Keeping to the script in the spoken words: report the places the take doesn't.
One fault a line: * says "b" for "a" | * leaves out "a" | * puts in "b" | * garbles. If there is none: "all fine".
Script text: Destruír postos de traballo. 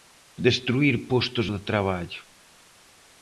all fine